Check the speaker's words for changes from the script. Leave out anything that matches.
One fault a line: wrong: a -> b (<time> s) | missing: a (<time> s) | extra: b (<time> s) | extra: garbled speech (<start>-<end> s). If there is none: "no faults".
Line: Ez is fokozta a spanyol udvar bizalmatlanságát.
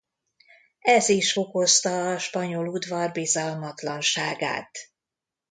no faults